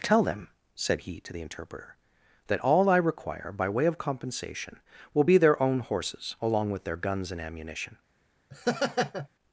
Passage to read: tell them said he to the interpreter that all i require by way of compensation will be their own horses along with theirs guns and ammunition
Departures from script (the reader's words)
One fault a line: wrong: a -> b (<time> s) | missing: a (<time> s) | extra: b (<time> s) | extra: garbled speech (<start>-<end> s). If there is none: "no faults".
wrong: theirs -> their (6.8 s)